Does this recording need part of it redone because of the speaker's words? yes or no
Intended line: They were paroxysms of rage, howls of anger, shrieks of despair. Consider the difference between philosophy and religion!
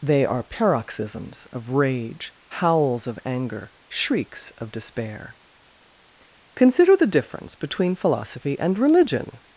yes